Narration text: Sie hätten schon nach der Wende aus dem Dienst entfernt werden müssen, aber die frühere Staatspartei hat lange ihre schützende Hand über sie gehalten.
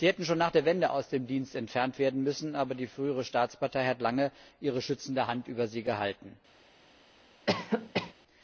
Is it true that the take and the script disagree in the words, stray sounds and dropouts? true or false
true